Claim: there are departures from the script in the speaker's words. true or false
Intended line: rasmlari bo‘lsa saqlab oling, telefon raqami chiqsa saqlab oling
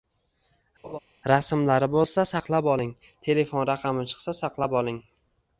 false